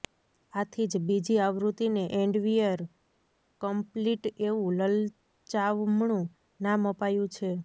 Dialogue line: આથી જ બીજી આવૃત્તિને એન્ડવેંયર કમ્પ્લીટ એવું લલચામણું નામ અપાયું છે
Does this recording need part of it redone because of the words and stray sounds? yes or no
no